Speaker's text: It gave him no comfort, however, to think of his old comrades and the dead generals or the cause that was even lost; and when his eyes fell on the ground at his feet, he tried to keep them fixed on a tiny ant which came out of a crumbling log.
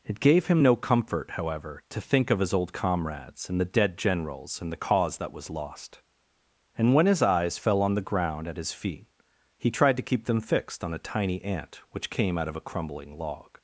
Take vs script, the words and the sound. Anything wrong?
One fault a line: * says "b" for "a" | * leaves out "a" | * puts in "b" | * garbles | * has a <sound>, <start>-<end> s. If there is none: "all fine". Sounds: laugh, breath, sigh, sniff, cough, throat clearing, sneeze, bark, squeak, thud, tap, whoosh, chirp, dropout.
* says "and" for "or"
* leaves out "even"